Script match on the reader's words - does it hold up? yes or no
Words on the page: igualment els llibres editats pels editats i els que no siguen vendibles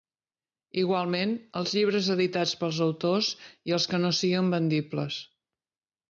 no